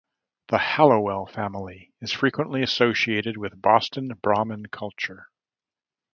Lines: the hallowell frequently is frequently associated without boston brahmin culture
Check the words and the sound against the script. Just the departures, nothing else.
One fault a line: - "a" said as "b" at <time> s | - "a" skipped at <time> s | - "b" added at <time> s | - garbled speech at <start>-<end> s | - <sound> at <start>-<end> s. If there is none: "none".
- "frequently" said as "family" at 1.3 s
- "without" said as "with" at 3.4 s